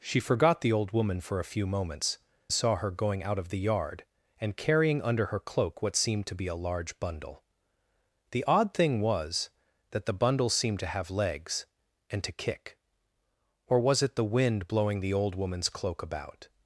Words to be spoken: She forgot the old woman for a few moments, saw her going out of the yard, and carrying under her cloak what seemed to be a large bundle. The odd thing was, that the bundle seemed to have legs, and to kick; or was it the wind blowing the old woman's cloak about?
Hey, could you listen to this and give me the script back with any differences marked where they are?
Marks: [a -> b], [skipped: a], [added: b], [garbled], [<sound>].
She forgot the old woman for a few moments, saw her going out of the yard, and carrying under her cloak what seemed to be a large bundle. The odd thing was, that the bundle seemed to have legs, and to kick; or was it the wind blowing the old woman's cloak about?